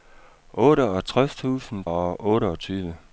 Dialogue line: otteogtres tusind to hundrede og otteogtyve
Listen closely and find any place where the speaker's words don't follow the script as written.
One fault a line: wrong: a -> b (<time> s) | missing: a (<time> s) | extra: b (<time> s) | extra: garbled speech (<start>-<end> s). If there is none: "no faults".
missing: to hundrede (1.9 s)